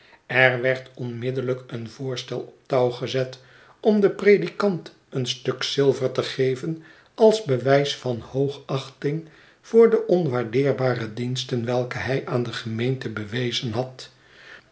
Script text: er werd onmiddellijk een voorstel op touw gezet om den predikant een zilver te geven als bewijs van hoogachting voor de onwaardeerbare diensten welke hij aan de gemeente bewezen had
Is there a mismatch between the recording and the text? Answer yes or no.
yes